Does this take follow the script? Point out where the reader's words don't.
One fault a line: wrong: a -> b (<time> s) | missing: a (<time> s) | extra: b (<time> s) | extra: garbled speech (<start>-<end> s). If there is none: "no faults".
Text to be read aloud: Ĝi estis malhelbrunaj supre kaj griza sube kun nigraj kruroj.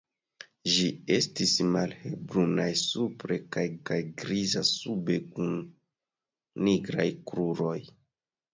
extra: kaj (3.9 s)